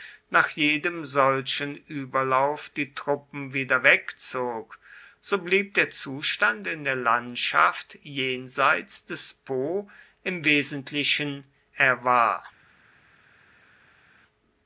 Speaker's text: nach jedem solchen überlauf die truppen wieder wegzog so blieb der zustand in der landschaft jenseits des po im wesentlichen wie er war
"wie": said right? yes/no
no